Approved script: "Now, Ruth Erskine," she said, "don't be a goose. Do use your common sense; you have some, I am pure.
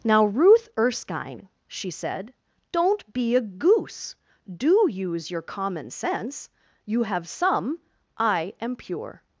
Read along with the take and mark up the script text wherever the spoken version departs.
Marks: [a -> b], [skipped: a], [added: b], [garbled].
"Now, Ruth Erskine," she said, "don't be a goose. Do use your common sense; you have some, I am pure.